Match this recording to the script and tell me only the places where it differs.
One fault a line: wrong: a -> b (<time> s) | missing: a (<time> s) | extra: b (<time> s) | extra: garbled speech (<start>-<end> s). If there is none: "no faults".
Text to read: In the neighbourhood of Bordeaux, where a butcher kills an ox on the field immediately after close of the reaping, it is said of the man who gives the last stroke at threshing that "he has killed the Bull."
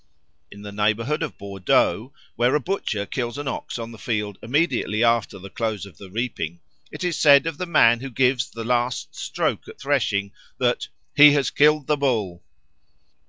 extra: the (5.4 s)